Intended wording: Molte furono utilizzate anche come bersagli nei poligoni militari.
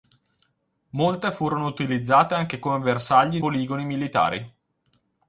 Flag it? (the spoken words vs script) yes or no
yes